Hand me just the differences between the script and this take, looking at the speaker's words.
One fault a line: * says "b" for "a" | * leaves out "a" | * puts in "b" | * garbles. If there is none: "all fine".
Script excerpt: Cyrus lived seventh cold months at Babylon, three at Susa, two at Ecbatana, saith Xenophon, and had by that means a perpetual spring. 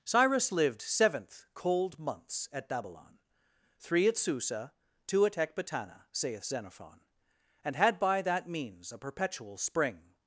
all fine